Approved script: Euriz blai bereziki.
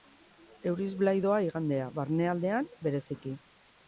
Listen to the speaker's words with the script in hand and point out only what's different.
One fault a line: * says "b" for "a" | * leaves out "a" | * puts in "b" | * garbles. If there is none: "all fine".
* puts in "doa igandea barnealdean"